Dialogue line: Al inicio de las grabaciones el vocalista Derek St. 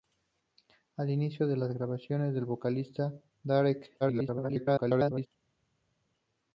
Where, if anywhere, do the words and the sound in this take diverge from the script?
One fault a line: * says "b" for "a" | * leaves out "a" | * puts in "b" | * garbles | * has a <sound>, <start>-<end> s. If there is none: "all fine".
* garbles